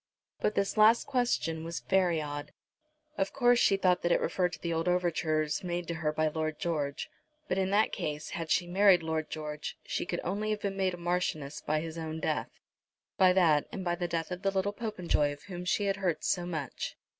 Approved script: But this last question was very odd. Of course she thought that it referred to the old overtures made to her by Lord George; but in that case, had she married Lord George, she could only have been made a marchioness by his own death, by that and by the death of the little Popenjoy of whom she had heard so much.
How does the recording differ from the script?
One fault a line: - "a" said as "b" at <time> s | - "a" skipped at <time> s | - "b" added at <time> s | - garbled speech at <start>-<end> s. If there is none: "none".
none